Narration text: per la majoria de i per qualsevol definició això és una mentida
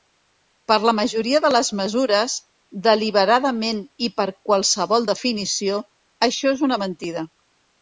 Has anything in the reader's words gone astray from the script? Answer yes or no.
yes